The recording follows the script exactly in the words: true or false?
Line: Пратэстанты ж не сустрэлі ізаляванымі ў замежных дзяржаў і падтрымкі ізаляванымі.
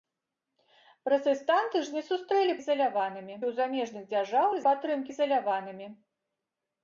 true